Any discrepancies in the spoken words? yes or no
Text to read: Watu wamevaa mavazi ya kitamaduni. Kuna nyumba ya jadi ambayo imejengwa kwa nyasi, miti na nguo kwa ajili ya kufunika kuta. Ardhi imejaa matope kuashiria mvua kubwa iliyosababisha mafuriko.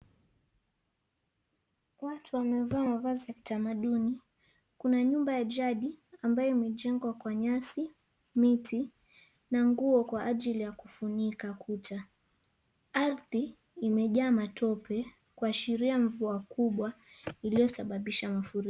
no